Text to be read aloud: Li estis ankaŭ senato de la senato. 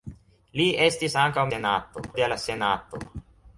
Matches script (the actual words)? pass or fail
pass